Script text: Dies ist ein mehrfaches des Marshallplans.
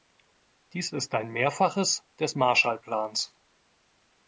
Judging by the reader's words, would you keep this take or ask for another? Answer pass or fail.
pass